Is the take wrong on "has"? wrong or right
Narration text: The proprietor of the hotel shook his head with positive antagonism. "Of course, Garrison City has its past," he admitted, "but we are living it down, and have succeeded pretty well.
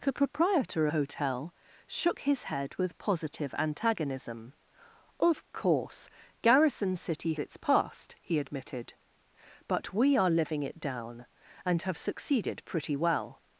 wrong